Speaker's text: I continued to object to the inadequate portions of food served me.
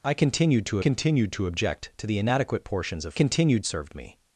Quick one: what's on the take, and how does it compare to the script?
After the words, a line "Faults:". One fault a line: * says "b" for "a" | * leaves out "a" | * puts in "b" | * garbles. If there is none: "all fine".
I continued to continued to object to the inadequate portions of continued served me.
Faults:
* puts in "continued to"
* says "continued" for "food"